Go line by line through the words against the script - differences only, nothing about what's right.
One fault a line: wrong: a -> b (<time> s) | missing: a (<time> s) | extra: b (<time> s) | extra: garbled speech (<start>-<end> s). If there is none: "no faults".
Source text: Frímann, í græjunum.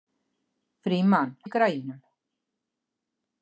no faults